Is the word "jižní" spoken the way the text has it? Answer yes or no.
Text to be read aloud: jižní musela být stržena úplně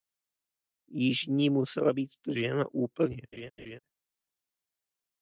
yes